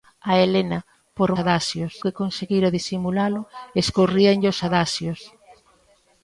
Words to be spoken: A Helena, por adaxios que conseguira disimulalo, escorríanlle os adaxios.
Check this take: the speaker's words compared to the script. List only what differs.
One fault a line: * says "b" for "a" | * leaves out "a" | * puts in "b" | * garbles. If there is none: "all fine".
all fine